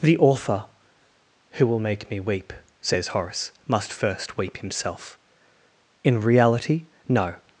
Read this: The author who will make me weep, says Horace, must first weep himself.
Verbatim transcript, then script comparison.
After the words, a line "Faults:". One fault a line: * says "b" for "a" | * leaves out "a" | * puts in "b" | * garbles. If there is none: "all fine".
The author who will make me weep, says Horace, must first weep himself. In reality, no
Faults:
* puts in "In reality no"